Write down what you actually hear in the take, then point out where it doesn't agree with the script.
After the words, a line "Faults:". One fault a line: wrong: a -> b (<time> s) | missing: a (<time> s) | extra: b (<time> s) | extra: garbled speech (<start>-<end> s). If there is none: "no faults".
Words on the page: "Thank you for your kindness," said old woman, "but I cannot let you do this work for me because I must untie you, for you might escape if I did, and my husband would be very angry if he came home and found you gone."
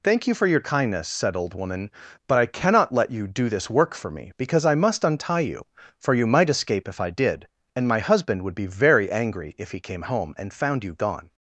"Thank you for your kindness," said old woman, "but I cannot let you do this work for me because I must untie you, for you might escape if I did, and my husband would be very angry if he came home and found you gone."
Faults:
no faults